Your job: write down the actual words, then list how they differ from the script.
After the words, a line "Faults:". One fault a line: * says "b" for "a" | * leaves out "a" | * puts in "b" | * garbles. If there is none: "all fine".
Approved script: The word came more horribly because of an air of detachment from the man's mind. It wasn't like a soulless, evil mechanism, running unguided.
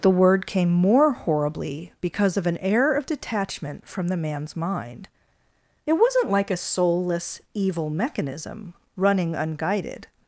The word came more horribly because of an air of detachment from the man's mind. It wasn't like a soulless, evil mechanism, running unguided.
Faults:
all fine